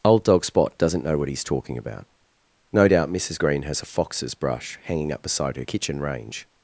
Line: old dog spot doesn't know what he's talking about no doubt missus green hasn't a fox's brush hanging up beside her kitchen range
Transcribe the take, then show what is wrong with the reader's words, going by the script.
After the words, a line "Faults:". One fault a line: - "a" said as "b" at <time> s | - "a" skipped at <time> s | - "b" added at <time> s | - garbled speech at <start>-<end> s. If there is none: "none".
old dog spot doesn't know what he's talking about no doubt missus green has a fox's brush hanging up beside her kitchen range
Faults:
- "hasn't" said as "has" at 3.6 s